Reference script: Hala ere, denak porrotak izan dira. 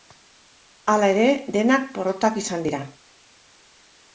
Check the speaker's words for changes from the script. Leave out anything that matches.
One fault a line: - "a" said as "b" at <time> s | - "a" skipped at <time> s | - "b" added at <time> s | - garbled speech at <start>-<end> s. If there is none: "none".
none